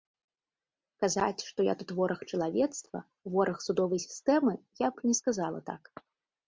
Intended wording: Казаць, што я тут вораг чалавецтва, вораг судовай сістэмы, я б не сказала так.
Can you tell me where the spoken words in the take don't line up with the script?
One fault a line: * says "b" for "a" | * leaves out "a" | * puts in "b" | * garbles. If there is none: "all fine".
all fine